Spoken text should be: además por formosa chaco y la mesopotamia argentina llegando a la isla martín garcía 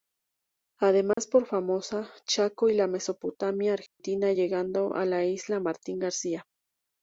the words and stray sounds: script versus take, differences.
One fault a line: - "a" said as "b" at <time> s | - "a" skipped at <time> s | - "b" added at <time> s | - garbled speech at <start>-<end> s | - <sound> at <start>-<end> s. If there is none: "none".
- dropout at 1.1-1.2 s
- dropout at 3.9-4.0 s